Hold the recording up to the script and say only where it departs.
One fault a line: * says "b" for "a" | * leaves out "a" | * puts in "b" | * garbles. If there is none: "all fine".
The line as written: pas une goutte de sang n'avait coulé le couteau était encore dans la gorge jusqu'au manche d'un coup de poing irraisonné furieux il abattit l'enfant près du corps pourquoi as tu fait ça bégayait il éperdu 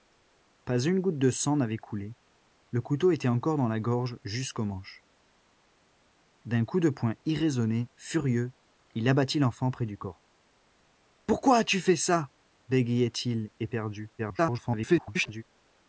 * garbles